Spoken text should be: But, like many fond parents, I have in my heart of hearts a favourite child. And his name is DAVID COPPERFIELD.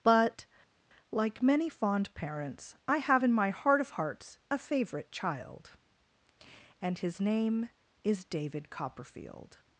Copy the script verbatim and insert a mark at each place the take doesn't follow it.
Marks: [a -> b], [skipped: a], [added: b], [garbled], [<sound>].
But, like many fond parents, I have in my heart of hearts a favourite child. And his name is DAVID COPPERFIELD.